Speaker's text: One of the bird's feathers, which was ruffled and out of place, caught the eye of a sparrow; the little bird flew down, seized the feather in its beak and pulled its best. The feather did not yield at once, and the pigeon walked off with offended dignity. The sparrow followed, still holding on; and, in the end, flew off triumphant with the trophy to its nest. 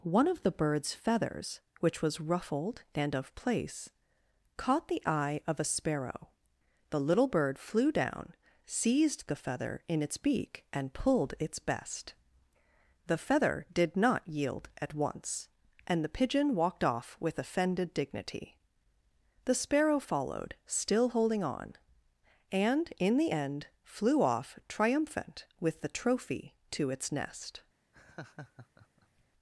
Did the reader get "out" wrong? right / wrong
wrong